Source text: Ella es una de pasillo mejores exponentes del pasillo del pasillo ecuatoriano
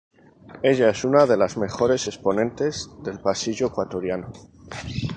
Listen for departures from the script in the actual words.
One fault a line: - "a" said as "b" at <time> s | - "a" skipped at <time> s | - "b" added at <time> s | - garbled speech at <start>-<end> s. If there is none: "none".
- "pasillo" said as "las" at 1.4 s
- "del pasillo" skipped at 3.6 s